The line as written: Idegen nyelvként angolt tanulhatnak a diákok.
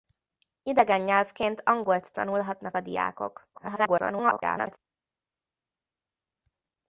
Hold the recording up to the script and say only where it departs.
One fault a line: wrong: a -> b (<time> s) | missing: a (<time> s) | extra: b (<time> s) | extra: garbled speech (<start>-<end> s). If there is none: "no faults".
extra: garbled speech (3.5-4.8 s)